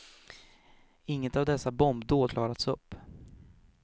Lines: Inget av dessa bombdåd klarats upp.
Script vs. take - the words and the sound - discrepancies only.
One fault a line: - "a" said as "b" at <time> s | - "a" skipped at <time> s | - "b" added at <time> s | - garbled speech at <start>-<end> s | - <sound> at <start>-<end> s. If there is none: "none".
none